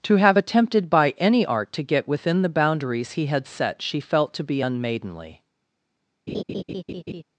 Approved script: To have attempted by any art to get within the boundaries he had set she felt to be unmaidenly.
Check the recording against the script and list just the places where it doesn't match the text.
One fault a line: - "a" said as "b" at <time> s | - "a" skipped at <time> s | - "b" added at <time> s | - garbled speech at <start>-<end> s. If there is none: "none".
none